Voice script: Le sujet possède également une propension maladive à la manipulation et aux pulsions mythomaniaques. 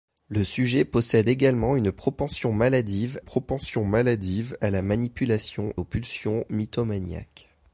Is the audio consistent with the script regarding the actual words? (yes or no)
no